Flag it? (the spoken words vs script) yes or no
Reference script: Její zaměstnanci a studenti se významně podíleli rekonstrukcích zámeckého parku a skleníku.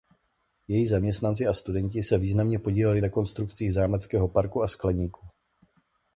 no